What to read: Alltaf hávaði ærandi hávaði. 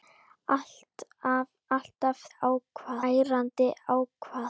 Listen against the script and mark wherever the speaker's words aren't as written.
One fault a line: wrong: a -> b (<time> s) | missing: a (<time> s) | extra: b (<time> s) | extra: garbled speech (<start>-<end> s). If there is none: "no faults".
no faults